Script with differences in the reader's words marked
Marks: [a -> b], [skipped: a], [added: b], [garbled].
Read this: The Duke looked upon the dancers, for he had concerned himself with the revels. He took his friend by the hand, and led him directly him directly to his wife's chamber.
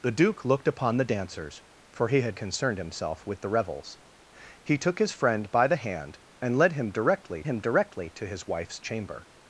The Duke looked upon the dancers, for he had concerned himself with the revels. He took his friend by the hand, and led him directly him directly to his wife's chamber.